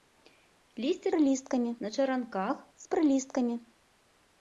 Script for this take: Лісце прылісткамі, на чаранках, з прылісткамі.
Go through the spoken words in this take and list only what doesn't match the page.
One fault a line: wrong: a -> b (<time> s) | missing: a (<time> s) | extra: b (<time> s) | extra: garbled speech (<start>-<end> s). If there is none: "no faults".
no faults